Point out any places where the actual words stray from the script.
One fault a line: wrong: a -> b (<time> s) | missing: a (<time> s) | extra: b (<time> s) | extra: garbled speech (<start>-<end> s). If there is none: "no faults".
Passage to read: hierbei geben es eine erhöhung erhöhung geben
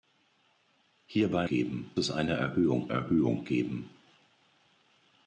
no faults